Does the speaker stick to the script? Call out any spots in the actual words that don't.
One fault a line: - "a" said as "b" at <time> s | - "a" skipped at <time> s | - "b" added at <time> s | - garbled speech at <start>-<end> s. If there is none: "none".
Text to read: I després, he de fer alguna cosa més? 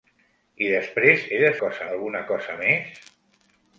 - "fer" said as "cosa" at 1.6 s